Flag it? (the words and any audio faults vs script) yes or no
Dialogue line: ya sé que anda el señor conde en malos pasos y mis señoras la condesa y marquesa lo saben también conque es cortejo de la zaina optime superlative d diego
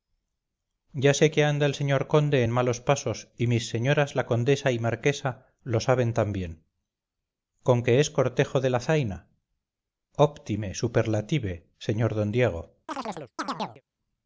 yes